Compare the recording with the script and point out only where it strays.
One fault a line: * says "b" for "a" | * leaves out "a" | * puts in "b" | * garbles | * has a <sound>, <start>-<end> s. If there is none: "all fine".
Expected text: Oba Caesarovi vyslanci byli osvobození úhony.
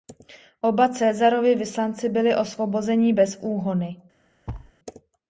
* puts in "bez"
* has a thud, 4.5-4.7 s